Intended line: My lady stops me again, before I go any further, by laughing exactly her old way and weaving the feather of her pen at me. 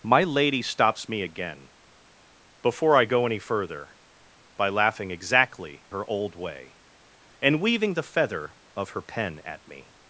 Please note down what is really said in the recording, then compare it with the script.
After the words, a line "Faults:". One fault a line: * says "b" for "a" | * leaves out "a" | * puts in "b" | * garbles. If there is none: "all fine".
My lady stops me again, before I go any further, by laughing exactly her old way and weaving the feather of her pen at me.
Faults:
all fine